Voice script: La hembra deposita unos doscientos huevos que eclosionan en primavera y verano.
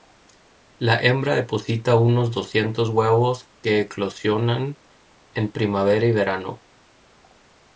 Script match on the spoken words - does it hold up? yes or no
yes